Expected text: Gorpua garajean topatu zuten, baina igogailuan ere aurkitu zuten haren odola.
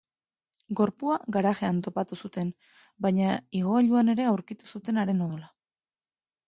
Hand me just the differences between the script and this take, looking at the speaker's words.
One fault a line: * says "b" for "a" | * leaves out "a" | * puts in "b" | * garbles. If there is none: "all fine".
all fine